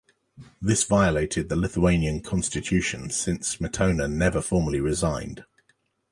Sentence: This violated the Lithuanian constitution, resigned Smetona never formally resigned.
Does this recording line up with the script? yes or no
no